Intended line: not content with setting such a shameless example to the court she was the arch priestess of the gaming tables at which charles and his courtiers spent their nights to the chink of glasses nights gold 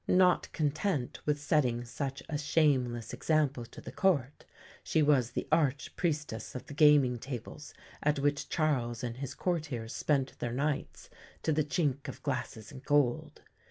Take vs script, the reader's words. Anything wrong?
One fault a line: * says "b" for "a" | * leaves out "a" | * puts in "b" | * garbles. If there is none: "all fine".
* says "and" for "nights"